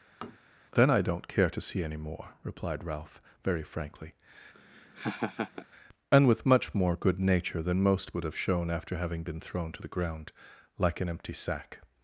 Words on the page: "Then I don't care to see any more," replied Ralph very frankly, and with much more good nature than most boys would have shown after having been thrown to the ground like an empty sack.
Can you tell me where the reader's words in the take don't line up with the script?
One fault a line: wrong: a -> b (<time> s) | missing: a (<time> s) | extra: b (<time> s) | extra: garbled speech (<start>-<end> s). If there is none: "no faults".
missing: boys (8.2 s)